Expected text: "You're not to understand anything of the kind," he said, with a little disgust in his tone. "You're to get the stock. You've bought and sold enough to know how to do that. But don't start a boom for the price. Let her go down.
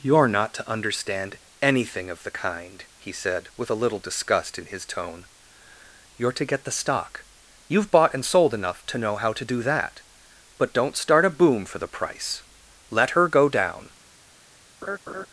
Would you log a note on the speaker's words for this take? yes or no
no